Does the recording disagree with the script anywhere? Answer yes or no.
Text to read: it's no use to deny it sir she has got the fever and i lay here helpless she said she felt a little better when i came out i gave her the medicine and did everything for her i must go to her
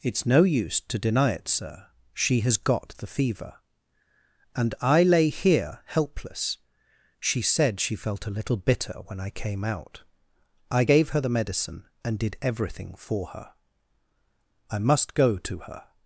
yes